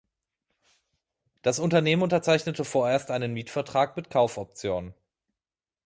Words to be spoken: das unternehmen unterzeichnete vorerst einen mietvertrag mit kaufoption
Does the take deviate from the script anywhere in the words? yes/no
no